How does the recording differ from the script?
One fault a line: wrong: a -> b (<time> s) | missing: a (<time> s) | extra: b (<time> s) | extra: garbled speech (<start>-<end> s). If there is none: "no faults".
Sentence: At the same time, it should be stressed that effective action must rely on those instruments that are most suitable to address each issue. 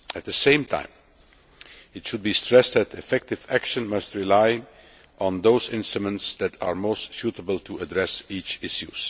no faults